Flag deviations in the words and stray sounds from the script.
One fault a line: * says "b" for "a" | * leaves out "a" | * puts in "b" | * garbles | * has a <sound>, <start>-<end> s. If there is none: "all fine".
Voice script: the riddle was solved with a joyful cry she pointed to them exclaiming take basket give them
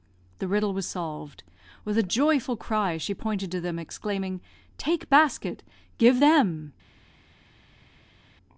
all fine